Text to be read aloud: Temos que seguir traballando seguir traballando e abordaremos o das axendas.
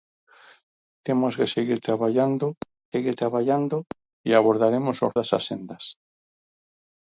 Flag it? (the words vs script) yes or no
no